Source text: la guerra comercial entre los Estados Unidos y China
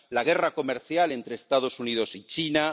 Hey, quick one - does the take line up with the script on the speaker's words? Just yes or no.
yes